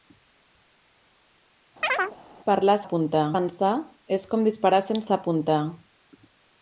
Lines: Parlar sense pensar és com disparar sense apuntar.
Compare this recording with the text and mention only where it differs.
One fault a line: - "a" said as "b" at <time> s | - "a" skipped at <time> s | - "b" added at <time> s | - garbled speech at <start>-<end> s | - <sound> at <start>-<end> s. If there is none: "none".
- chirp at 1.8-2.2 s
- "sense" said as "apuntar" at 2.8 s